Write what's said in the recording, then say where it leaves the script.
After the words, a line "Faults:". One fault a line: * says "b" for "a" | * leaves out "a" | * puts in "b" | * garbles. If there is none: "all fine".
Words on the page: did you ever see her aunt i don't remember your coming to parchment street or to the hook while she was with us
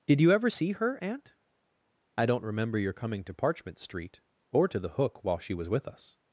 did you ever see her aunt i don't remember your coming to parchment street or to the hook while she was with us
Faults:
all fine